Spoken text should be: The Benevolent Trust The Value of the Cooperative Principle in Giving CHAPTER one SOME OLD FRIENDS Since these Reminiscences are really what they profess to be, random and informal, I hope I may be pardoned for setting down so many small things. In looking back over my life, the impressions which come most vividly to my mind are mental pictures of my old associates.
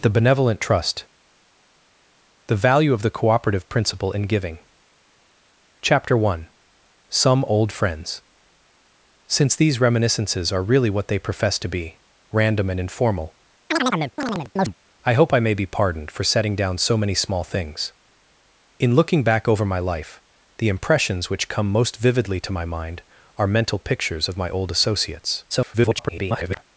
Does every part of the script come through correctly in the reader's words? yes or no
no